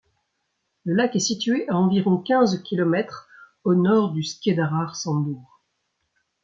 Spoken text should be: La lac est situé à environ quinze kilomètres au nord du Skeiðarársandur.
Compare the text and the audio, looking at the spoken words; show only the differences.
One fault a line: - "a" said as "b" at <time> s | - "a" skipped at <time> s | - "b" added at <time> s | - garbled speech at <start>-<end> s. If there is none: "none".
- "La" said as "Le" at 0.8 s